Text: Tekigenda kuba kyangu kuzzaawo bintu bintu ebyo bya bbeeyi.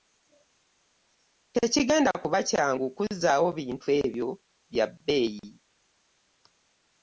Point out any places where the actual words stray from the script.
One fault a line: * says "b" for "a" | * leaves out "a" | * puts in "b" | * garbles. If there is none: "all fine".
* leaves out "bintu"